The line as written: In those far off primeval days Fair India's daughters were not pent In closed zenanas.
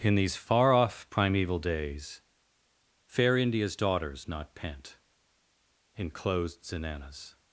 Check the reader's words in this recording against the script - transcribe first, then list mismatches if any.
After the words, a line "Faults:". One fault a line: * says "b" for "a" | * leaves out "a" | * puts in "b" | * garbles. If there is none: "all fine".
In these far off primeval days Fair India's daughters not pent In closed zenanas.
Faults:
* says "these" for "those"
* leaves out "were"